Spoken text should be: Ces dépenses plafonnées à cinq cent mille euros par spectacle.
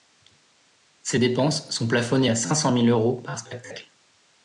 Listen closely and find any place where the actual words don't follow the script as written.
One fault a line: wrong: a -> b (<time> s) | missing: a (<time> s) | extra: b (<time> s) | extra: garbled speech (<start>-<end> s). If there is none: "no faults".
extra: sont (1.7 s)